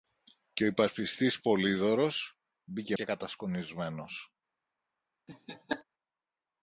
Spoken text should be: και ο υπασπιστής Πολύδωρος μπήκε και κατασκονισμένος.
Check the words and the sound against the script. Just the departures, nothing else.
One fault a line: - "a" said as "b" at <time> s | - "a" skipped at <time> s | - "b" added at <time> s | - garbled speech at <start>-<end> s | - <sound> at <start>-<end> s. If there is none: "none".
- laugh at 5.3-5.8 s